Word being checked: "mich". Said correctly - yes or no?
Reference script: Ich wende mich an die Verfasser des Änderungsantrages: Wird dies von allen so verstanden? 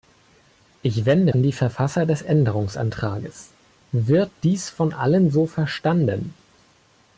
no